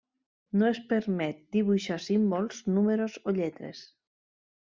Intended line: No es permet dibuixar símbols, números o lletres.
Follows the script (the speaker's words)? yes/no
yes